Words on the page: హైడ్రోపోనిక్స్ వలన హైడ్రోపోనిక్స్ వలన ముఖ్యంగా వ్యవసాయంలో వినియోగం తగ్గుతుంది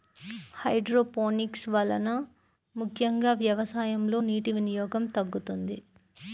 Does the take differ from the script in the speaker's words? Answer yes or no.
yes